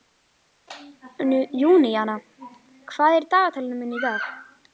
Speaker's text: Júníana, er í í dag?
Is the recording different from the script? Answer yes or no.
yes